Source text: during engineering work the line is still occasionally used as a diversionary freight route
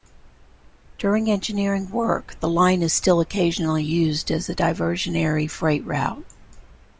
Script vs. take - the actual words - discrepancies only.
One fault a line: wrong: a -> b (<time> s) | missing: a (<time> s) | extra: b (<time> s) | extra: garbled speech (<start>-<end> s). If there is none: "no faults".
no faults